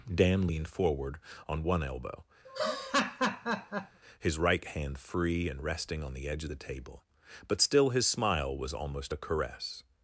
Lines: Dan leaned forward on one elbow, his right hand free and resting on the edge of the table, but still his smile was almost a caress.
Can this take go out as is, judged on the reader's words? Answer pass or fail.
pass